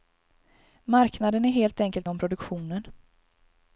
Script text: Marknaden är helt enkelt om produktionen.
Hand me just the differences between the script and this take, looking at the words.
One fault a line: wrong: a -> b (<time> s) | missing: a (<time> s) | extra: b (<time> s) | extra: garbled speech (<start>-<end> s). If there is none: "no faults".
no faults